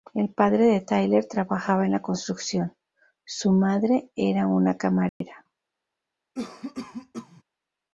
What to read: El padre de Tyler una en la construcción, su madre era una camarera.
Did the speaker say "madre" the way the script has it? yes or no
yes